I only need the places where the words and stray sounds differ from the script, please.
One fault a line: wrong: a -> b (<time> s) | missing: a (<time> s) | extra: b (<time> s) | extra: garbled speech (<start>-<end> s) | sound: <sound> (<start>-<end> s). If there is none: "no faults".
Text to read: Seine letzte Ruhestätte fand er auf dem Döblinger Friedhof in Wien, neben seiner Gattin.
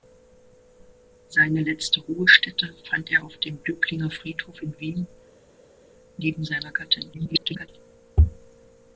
extra: garbled speech (7.1-7.7 s)